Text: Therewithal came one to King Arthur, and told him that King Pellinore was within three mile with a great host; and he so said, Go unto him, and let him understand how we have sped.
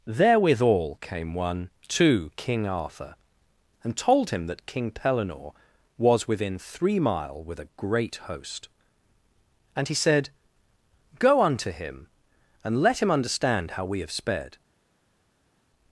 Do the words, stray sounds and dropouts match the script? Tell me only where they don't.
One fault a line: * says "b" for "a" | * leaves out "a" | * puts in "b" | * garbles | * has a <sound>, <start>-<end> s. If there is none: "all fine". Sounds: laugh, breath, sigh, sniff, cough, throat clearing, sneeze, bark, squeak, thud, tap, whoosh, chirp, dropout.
* leaves out "so"